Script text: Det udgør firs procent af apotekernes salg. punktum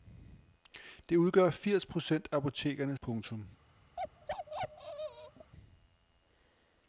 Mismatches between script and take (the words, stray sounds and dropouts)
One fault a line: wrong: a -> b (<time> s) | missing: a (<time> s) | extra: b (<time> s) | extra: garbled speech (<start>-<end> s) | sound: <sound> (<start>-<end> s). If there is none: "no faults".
missing: salg (3.0 s)
sound: bark (4.0-5.5 s)